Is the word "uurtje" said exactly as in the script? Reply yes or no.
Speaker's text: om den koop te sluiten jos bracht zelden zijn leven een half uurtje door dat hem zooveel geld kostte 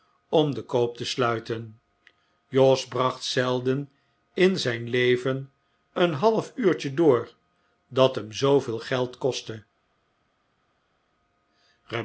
yes